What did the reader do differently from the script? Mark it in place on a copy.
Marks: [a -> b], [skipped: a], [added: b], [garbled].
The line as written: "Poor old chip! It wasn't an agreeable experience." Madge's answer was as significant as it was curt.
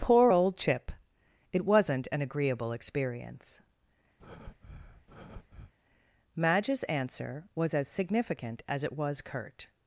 "Poor old chip! It wasn't an agreeable experience." Madge's answer was as significant as it was curt.